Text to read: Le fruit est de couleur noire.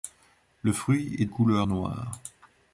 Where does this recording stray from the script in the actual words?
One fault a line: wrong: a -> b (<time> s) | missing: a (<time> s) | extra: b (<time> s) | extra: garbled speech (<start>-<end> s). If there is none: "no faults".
missing: de (1.2 s)